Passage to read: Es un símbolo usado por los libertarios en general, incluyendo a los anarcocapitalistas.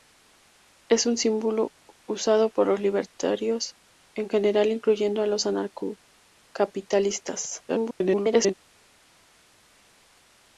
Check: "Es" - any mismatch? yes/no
no